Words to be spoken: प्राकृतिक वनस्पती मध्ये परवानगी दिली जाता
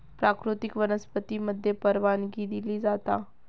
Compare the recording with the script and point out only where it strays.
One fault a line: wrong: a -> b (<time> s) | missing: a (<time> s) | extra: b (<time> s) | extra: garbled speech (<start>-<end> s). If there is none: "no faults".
no faults